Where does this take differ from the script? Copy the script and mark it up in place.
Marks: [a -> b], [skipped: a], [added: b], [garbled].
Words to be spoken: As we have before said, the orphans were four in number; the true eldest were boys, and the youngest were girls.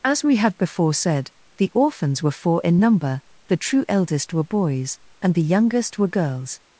As we have before said, the orphans were four in number; the true eldest were boys, and the youngest were girls.